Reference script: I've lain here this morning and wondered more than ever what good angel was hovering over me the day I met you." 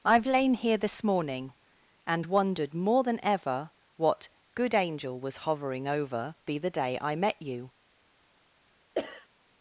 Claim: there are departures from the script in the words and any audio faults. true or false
true